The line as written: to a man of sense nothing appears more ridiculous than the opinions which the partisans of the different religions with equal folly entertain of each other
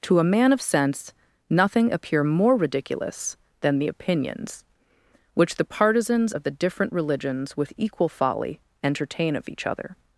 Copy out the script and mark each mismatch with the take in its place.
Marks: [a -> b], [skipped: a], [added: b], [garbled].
to a man of sense nothing [appears -> appear] more ridiculous than the opinions which the partisans of the different religions with equal folly entertain of each other